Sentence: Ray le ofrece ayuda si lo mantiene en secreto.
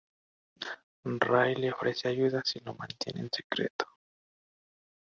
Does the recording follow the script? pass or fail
pass